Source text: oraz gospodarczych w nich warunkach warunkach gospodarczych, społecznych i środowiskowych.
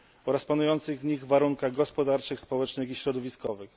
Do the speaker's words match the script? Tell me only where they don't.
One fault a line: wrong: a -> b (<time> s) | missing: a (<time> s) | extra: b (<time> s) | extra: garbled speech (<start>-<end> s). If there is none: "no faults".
wrong: gospodarczych -> panujących (0.4 s)
missing: warunkach (1.7 s)